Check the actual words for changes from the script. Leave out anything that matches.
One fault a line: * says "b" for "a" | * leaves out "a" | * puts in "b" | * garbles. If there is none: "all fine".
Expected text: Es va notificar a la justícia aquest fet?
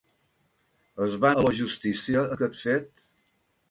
* leaves out "notificar"